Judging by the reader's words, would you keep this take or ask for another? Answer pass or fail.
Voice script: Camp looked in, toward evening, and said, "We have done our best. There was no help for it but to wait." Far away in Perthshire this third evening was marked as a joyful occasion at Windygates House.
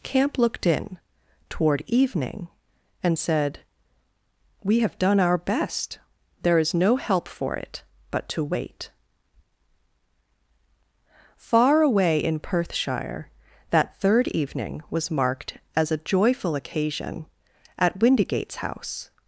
fail